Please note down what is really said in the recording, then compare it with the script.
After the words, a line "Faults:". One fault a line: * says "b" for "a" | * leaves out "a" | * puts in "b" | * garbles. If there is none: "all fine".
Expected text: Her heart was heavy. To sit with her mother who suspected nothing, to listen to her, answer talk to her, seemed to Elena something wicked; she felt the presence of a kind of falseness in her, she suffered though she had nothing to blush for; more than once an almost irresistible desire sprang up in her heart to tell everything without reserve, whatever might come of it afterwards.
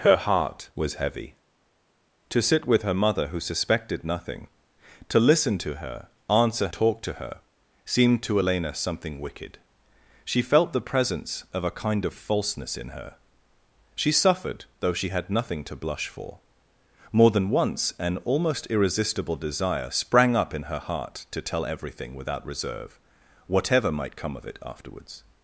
Her heart was heavy. To sit with her mother who suspected nothing, to listen to her, answer talk to her, seemed to Elena something wicked; she felt the presence of a kind of falseness in her, she suffered though she had nothing to blush for; more than once an almost irresistible desire sprang up in her heart to tell everything without reserve, whatever might come of it afterwards.
Faults:
all fine